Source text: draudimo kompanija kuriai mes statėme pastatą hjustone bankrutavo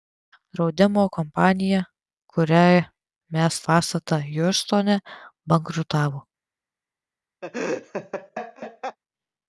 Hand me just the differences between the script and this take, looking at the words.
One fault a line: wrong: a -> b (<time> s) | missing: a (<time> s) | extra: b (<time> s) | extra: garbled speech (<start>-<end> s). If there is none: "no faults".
missing: statėme (3.6 s)